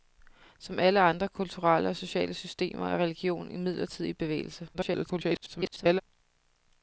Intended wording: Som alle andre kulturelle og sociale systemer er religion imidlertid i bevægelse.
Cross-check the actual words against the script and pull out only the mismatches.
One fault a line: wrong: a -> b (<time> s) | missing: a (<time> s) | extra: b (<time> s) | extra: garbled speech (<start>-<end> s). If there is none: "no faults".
extra: garbled speech (4.7-6.0 s)